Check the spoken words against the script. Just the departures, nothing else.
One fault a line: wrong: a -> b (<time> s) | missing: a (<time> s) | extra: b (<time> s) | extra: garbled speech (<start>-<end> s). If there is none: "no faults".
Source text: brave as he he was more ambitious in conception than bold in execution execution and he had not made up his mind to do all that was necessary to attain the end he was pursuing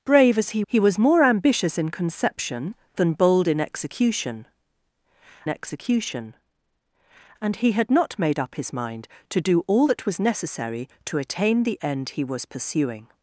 no faults